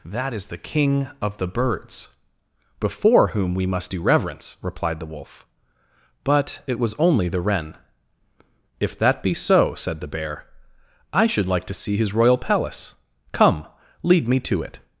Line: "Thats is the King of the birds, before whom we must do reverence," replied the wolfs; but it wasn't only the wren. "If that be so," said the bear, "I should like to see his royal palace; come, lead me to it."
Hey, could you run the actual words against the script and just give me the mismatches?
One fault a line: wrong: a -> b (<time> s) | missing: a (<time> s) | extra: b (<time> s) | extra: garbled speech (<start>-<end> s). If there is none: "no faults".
wrong: Thats -> That (0.0 s)
wrong: wolfs -> wolf (5.0 s)
wrong: wasn't -> was (6.8 s)